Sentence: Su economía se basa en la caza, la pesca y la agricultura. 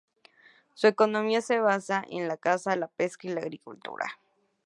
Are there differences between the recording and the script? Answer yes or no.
no